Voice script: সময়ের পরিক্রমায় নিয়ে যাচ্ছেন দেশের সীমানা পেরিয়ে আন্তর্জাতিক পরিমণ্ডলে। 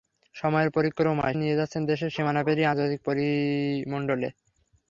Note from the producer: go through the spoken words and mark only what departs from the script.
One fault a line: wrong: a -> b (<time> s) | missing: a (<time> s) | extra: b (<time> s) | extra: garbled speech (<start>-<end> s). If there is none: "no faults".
no faults